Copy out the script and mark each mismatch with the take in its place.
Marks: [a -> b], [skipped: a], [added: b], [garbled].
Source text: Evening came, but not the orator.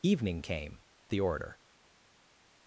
Evening came, [skipped: but not] the orator.